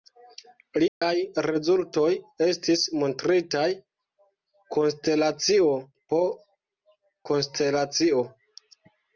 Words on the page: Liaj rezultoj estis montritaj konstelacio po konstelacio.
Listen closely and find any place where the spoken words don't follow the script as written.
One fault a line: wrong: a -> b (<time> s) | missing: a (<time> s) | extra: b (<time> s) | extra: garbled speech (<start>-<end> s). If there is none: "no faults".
no faults